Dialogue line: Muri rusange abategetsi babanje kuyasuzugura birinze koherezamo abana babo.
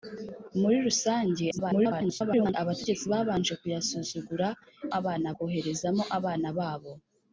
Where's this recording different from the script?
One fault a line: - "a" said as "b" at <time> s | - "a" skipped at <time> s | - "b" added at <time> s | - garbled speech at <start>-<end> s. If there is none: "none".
- garbled speech at 1.5-2.5 s
- "birinze" said as "abana" at 5.0 s